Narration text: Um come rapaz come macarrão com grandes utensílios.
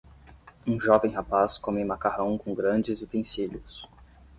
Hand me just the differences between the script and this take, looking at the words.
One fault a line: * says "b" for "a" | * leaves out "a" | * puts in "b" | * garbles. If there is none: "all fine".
* says "jovem" for "come"